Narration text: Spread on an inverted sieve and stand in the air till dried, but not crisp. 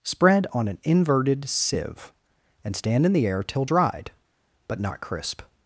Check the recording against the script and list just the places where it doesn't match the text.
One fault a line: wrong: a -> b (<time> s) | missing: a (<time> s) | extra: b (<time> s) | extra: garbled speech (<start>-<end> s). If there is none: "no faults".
no faults